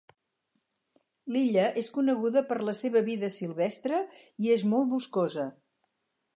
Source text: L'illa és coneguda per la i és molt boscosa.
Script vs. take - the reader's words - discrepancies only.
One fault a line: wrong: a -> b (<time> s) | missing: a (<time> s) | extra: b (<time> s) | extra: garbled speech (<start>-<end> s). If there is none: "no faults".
extra: seva vida silvestre (2.8 s)